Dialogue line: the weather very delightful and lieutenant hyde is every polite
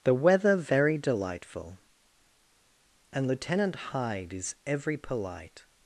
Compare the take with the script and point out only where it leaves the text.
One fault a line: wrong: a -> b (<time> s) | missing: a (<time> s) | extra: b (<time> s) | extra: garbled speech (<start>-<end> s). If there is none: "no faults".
no faults